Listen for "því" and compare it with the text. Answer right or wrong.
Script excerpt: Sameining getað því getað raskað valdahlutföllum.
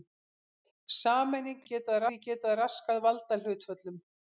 right